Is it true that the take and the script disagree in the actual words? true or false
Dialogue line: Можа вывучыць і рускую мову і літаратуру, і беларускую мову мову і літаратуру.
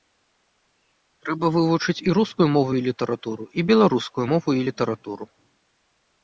true